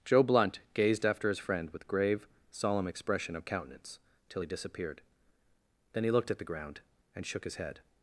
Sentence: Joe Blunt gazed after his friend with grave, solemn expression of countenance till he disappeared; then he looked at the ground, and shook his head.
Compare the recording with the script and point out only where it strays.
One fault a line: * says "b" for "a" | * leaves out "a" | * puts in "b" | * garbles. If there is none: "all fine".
all fine